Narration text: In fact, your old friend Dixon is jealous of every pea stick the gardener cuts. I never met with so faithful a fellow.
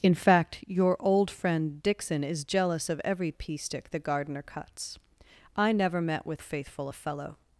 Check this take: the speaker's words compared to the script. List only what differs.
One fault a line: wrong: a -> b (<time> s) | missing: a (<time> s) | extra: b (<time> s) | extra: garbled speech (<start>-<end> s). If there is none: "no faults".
missing: so (6.4 s)